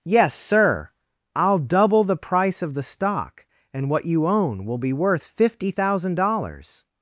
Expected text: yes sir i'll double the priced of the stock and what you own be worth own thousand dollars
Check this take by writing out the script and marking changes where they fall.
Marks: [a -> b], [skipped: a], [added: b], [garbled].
yes sir i'll double the [priced -> price] of the stock and what you own [added: will] be worth [own -> fifty] thousand dollars